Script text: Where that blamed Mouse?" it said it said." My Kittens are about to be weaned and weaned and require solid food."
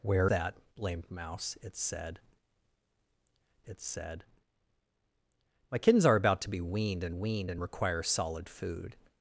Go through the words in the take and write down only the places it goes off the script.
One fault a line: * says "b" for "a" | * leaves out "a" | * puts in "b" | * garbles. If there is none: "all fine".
all fine